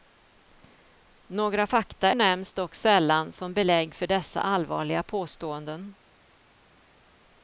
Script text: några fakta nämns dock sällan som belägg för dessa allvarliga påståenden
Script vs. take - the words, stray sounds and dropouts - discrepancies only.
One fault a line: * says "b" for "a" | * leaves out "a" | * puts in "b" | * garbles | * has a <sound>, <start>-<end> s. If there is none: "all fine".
all fine